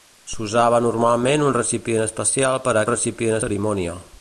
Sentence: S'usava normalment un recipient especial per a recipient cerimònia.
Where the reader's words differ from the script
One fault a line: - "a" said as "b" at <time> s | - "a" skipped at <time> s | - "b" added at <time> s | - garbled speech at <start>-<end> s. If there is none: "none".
none